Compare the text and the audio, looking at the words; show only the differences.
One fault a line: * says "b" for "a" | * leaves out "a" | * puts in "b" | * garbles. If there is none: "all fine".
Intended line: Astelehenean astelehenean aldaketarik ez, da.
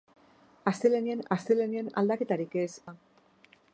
all fine